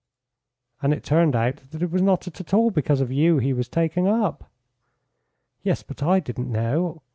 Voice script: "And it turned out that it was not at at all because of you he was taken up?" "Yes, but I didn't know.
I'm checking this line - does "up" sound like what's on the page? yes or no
yes